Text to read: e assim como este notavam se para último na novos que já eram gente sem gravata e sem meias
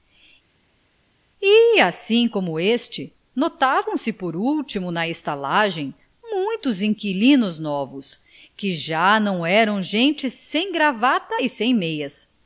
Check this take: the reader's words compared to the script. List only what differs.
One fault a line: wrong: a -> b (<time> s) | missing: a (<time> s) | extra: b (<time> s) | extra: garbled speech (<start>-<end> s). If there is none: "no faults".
wrong: para -> por (4.1 s)
extra: estalagem muitos inquilinos (5.1 s)
extra: não (9.2 s)